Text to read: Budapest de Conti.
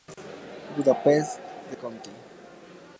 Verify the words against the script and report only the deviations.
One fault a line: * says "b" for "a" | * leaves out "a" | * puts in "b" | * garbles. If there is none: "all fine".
all fine